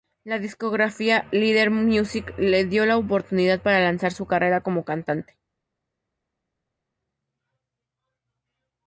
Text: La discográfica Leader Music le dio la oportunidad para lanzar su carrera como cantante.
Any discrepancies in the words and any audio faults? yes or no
no